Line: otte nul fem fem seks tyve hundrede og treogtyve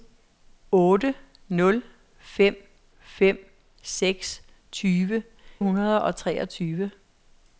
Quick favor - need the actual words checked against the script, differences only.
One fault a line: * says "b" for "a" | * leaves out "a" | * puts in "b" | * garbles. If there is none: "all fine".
all fine